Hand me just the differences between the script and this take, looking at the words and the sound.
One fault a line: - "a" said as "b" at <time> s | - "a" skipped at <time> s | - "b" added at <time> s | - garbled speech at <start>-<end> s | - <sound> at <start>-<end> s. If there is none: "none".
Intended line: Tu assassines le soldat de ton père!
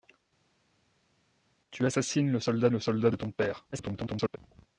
- "le soldat" added at 2.7 s
- garbled speech at 3.7-4.4 s